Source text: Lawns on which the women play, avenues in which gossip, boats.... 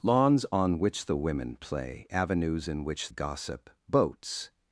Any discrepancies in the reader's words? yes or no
no